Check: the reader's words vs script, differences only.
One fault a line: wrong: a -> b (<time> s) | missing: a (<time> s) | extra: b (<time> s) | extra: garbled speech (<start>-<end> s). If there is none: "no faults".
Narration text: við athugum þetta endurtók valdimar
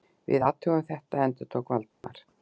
no faults